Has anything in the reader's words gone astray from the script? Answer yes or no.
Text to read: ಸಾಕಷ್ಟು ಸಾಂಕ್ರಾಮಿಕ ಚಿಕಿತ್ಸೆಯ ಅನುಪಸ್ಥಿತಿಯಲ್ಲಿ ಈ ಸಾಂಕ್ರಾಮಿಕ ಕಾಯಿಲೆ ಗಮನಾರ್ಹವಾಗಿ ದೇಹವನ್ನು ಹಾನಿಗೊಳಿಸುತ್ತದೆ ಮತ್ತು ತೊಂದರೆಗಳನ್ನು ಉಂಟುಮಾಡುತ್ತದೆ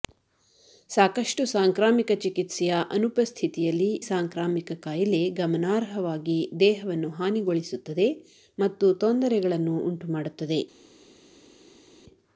yes